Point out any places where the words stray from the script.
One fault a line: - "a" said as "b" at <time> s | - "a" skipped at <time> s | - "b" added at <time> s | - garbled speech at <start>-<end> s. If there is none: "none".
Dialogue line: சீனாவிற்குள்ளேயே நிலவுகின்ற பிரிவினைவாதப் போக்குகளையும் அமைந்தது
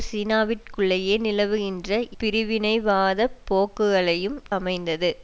none